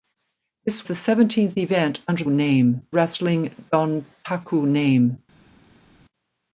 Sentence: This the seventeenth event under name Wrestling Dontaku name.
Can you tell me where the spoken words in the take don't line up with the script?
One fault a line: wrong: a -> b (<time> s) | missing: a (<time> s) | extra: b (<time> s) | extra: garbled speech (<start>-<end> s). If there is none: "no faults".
no faults